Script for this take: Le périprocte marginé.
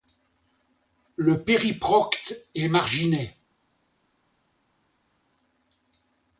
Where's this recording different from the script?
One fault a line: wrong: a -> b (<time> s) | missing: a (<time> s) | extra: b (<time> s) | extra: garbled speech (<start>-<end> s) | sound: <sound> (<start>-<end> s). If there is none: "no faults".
extra: est (2.5 s)